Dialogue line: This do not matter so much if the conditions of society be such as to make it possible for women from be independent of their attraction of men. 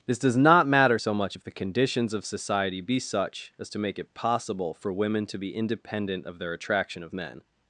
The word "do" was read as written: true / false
false